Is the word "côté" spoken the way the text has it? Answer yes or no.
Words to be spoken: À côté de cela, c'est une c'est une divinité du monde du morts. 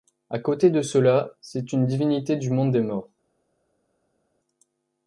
yes